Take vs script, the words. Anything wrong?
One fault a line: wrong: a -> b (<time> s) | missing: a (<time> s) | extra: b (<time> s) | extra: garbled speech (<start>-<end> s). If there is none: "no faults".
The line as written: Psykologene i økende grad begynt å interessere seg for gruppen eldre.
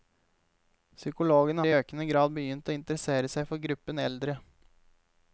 no faults